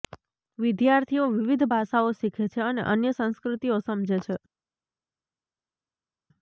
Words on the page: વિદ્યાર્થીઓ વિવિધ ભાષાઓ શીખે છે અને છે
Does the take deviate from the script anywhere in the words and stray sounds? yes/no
yes